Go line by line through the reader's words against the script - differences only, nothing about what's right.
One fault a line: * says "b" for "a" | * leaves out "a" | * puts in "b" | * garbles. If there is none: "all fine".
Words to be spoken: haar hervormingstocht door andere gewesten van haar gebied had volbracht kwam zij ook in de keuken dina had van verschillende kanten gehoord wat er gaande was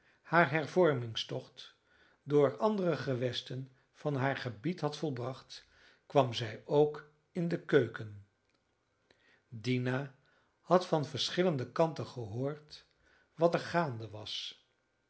all fine